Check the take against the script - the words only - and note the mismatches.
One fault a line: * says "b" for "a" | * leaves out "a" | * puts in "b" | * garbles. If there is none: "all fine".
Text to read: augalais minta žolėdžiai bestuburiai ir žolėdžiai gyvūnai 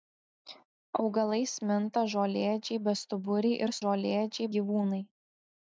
all fine